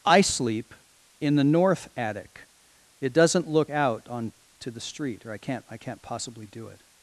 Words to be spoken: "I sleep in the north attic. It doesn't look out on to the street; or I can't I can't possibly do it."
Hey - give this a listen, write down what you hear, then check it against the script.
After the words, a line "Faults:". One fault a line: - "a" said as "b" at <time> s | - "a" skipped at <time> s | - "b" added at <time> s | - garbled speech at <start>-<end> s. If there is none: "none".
"I sleep in the north attic. It doesn't look out on to the street; or I can't I can't possibly do it."
Faults:
none